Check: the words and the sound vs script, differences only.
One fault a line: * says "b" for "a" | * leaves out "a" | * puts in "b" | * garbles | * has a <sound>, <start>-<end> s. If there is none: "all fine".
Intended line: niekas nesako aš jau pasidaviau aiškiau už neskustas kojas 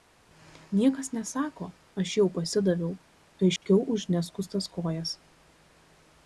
* has a dropout, 3.6-3.6 s